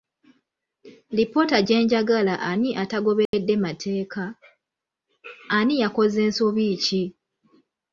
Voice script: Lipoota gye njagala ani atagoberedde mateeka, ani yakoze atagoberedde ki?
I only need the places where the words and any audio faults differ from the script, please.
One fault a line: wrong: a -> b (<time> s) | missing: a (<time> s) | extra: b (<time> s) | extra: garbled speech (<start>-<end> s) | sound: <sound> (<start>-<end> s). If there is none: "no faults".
sound: dropout (3.3-3.3 s)
wrong: atagoberedde -> nsobi (6.3 s)